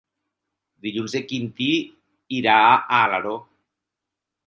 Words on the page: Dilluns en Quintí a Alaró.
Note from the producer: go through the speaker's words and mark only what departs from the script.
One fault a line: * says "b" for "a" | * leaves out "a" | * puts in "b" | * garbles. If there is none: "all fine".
* puts in "irà"